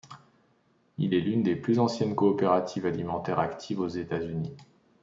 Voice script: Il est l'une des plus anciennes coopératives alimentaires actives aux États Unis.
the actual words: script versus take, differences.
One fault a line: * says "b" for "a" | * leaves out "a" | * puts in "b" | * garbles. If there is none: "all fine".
all fine